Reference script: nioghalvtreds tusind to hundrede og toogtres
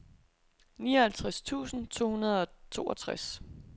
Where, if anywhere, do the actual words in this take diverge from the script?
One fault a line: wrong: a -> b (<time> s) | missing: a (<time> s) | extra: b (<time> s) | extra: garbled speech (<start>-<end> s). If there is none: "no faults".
no faults